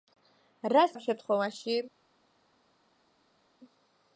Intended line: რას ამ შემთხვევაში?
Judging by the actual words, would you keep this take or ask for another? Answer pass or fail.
pass